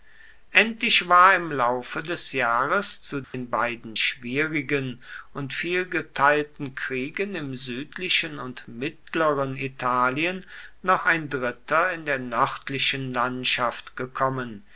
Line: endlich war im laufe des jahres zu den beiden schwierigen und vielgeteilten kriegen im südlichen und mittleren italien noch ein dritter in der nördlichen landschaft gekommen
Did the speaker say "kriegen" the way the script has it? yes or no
yes